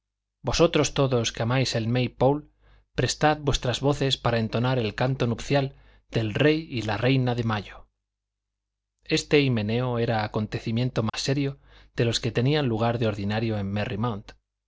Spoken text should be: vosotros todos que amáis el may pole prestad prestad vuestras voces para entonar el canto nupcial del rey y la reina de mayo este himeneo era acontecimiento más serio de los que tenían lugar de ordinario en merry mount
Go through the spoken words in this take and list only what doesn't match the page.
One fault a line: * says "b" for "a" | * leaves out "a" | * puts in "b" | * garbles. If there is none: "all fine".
* leaves out "prestad"